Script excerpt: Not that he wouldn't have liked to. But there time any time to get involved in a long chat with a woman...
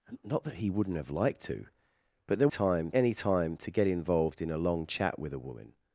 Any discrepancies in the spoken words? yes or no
no